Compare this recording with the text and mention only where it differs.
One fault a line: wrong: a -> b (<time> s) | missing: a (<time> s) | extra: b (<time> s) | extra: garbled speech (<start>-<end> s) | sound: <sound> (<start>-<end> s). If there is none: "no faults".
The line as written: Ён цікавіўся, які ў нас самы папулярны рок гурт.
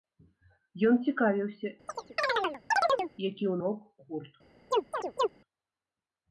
sound: chirp (1.9-3.1 s)
missing: нас самы папулярны (3.5 s)
sound: chirp (4.7-5.3 s)